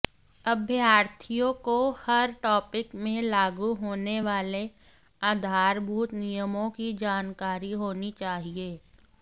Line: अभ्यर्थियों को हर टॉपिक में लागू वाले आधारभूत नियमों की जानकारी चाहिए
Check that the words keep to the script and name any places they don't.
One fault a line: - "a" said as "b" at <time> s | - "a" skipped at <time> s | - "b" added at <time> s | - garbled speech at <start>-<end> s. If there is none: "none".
- "होने" added at 3.8 s
- "होनी" added at 7.7 s